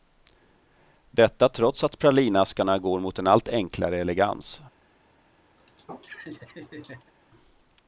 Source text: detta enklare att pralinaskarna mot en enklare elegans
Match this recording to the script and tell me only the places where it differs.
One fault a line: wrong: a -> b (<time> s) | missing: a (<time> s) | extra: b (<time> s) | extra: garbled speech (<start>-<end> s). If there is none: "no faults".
wrong: enklare -> trots (1.5 s)
extra: går (2.8 s)
extra: allt (3.3 s)